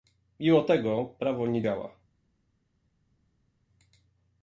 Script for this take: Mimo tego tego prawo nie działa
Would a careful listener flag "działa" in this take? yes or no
no